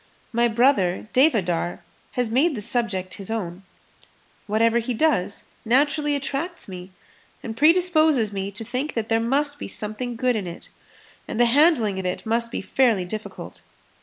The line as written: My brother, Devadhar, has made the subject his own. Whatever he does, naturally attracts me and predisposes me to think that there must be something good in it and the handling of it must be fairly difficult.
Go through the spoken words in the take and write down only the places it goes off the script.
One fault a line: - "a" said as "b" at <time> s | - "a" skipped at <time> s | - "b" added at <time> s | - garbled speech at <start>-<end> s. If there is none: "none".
none